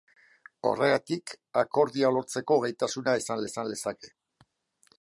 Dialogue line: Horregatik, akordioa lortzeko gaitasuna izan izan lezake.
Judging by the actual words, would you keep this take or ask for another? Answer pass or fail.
pass